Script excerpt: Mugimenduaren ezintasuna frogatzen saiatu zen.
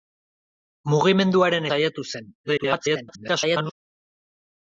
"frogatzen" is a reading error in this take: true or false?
true